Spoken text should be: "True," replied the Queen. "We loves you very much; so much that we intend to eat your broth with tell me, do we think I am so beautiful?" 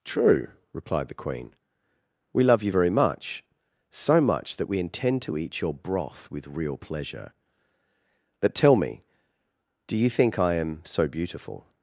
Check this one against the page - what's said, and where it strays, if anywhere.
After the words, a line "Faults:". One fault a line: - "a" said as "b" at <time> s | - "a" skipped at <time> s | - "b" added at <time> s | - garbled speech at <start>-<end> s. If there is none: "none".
"True," replied the Queen. "We love you very much; so much that we intend to eat your broth with real pleasure. But tell me, do you think I am so beautiful?"
Faults:
- "loves" said as "love" at 2.4 s
- "real pleasure But" added at 6.5 s
- "we" said as "you" at 10.0 s